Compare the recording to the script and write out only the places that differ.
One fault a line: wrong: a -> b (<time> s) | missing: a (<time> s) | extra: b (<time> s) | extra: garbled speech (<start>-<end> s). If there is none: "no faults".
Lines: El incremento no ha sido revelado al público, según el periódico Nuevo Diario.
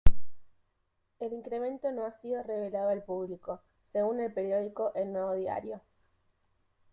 extra: El (5.0 s)